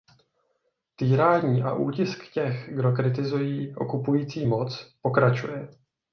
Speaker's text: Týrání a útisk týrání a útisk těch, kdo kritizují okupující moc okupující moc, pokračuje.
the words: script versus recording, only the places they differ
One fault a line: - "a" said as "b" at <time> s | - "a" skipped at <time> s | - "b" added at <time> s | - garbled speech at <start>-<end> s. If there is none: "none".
- "týrání a útisk" skipped at 2.3 s
- "okupující moc" skipped at 4.9 s